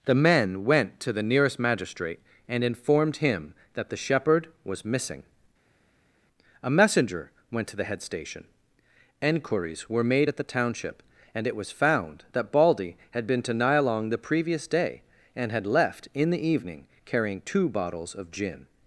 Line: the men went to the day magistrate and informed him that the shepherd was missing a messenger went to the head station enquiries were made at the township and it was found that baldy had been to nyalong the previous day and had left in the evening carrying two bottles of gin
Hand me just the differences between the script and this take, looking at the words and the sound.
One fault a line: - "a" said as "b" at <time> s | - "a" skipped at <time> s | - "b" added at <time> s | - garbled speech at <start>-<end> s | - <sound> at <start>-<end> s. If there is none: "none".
- "day" said as "nearest" at 1.2 s